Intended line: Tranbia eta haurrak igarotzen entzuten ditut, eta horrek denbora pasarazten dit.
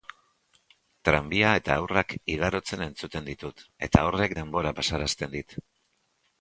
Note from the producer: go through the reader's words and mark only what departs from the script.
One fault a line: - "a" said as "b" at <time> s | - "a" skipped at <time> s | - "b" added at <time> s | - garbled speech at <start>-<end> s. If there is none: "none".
none